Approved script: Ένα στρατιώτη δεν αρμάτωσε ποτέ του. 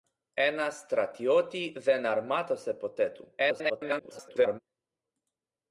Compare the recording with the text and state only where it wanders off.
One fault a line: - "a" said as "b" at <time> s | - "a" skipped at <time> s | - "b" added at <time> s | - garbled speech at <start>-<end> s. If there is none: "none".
- garbled speech at 3.4-4.6 s